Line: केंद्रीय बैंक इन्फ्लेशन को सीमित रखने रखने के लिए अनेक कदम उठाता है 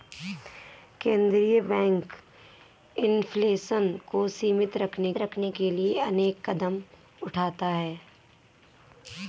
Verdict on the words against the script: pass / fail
pass